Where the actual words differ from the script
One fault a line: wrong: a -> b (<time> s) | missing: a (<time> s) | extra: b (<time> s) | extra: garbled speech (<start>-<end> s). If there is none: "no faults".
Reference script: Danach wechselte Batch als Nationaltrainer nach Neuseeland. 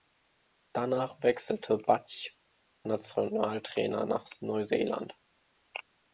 missing: als (2.4 s)